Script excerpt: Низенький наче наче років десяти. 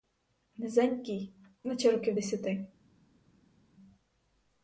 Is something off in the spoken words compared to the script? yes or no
yes